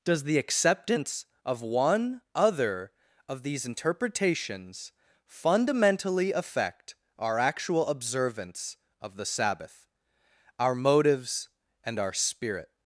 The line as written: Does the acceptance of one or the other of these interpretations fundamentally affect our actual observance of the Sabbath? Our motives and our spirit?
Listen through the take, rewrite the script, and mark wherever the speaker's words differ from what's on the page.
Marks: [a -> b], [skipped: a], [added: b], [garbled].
Does the acceptance of one [skipped: or the] other of these interpretations fundamentally affect our actual observance of the Sabbath? Our motives and our spirit?